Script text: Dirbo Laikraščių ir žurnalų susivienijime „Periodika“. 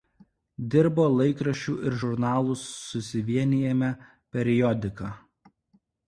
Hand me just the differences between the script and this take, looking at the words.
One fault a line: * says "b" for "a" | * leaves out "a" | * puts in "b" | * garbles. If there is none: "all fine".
all fine